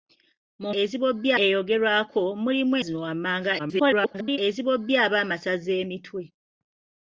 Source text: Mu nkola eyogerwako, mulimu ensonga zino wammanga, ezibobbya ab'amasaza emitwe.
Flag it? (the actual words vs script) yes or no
yes